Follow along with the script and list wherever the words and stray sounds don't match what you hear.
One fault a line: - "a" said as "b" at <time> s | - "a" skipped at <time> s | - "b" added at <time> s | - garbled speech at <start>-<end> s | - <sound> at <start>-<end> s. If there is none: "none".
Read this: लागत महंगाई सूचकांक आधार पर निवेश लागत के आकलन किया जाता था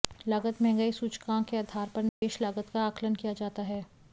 - "के" added at 1.5 s
- dropout at 2.1-2.2 s
- "के" said as "का" at 2.7 s
- "था" said as "है" at 3.6 s